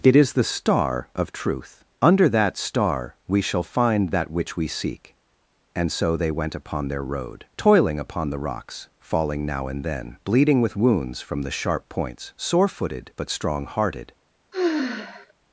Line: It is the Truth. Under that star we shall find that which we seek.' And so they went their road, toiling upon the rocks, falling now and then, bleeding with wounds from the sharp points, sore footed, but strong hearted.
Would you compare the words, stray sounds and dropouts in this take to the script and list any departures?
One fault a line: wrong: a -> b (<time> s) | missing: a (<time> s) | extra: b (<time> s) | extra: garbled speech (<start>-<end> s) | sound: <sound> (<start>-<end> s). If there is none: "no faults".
extra: star of (0.4 s)
extra: upon (6.5 s)
sound: sigh (14.5-15.3 s)